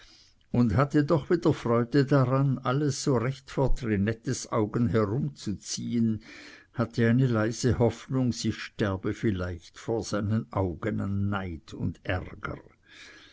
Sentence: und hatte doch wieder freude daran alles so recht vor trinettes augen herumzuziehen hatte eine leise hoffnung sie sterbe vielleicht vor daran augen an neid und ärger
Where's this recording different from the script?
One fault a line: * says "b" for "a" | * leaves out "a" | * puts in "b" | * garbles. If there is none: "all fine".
* says "seinen" for "daran"